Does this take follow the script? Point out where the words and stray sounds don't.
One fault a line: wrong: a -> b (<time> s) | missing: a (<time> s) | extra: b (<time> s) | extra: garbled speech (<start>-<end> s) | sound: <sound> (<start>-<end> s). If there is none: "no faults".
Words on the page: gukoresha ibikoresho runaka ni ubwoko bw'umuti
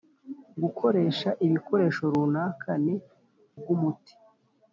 missing: ubwoko (3.0 s)